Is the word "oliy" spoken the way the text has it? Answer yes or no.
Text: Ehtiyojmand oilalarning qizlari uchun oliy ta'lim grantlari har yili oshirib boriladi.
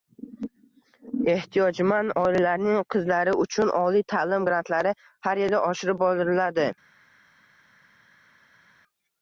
yes